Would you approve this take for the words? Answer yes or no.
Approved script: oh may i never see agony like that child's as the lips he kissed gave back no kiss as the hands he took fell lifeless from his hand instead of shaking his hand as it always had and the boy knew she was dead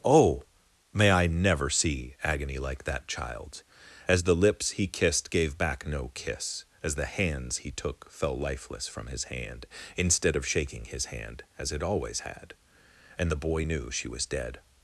yes